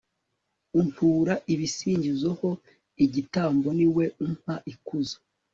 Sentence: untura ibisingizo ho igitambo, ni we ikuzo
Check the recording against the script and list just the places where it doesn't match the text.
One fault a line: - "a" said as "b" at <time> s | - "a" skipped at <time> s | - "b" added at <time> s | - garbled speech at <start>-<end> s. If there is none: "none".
- "umpa" added at 4.2 s